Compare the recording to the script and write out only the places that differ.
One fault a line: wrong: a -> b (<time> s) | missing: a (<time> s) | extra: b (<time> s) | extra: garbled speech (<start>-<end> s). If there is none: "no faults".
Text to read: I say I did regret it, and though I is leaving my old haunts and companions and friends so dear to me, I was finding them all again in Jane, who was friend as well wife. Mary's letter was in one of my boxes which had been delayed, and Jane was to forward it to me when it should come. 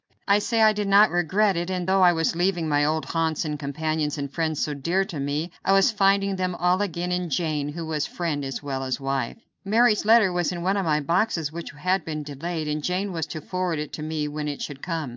extra: not (0.9 s)
wrong: is -> was (2.1 s)
extra: as (8.8 s)